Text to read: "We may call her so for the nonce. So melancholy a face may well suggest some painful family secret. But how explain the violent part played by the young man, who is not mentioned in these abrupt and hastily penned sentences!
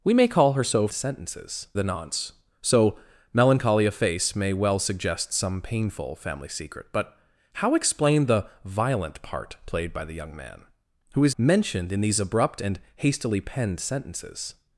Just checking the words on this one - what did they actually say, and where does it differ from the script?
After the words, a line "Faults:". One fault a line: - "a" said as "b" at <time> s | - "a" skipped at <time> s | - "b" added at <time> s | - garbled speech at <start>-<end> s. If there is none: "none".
"We may call her so sentences the nonce. So melancholy a face may well suggest some painful family secret. But how explain the violent part played by the young man, who is mentioned in these abrupt and hastily penned sentences!
Faults:
- "for" said as "sentences" at 0.9 s
- "not" skipped at 11.4 s